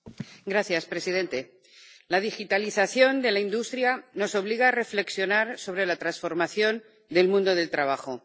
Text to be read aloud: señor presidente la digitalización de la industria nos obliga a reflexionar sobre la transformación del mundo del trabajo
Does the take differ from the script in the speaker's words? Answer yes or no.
no